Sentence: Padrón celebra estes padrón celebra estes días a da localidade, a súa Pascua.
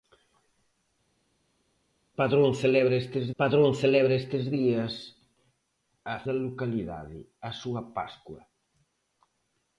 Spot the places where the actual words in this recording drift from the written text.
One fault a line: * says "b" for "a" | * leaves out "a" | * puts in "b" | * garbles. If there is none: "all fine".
all fine